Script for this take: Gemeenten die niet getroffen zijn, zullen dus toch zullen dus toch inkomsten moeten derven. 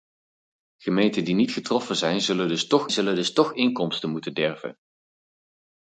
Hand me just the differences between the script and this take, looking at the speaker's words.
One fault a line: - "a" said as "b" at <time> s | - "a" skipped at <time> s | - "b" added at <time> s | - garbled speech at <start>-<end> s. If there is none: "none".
none